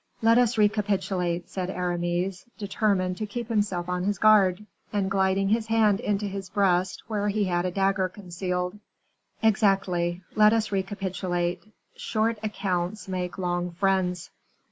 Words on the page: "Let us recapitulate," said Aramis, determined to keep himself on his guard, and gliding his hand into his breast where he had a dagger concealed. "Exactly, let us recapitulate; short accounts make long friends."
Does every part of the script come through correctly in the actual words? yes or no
yes